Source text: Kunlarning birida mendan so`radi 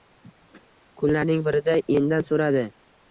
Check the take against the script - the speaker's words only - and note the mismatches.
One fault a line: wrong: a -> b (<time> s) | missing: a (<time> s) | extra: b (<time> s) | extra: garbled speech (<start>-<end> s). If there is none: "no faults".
no faults